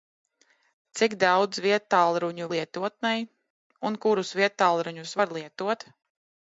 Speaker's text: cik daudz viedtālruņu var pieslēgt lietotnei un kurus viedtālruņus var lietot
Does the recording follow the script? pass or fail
fail